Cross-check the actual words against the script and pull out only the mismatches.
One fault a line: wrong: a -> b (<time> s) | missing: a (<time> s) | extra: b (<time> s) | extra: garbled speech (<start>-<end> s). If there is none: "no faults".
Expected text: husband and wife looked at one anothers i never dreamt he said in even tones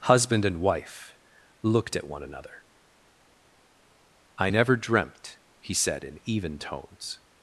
wrong: anothers -> another (2.2 s)